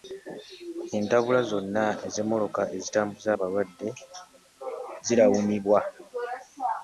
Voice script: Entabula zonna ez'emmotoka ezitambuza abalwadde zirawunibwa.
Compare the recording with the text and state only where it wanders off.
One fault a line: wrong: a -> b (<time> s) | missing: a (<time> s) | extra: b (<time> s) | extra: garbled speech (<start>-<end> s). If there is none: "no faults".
no faults